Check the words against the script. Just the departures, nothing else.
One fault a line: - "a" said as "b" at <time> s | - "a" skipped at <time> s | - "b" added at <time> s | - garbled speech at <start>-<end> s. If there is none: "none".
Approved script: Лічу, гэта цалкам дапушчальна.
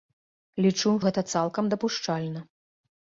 none